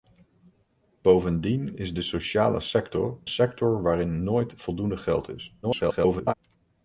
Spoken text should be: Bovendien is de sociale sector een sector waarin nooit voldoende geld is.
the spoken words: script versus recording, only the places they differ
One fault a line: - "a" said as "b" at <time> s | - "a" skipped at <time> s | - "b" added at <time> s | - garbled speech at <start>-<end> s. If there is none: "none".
- "een" skipped at 3.2 s
- garbled speech at 5.6-6.3 s